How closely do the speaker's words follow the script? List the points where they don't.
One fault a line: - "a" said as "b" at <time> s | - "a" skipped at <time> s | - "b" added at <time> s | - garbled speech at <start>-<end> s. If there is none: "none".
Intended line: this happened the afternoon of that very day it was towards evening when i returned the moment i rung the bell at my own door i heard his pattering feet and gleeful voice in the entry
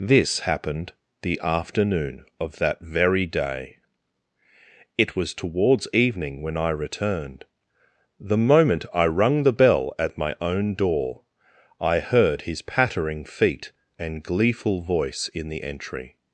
none